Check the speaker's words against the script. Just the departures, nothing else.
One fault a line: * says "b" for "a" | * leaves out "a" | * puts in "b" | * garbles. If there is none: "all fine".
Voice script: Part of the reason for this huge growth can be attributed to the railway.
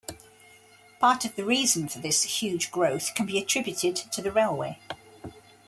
all fine